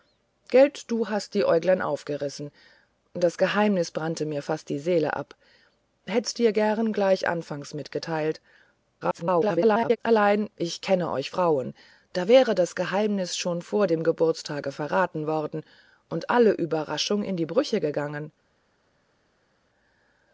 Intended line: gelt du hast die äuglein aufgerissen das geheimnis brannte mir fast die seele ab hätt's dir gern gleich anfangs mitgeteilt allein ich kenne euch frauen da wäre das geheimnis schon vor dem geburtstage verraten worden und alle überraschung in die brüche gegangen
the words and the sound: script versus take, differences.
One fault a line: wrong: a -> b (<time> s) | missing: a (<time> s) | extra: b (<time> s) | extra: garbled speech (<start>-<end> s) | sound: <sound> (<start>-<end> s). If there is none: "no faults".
extra: garbled speech (9.0-10.0 s)